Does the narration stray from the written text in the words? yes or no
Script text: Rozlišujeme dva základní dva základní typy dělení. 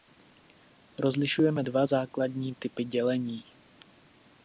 yes